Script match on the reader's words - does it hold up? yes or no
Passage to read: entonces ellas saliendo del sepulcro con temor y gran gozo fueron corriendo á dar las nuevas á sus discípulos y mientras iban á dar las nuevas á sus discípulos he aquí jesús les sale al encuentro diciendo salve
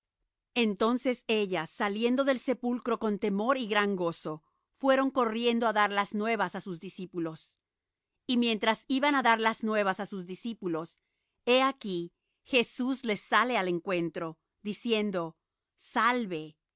yes